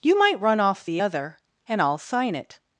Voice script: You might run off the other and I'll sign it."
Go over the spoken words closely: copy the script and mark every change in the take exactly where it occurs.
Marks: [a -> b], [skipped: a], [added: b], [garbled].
You might run off the other and I'll sign it."